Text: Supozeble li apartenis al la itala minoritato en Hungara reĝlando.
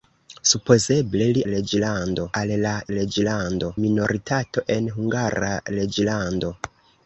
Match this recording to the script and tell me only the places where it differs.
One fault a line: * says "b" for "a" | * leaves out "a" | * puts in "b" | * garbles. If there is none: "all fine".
* says "reĝlando" for "apartenis"
* says "reĝlando" for "itala"